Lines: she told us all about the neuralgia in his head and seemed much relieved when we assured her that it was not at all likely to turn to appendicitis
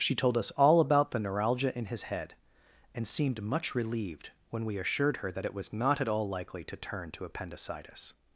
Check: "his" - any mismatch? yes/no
no